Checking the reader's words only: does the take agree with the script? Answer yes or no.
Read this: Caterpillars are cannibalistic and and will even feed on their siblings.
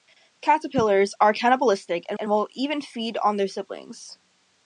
yes